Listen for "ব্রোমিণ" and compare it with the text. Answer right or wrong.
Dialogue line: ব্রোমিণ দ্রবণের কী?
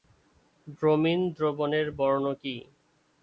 right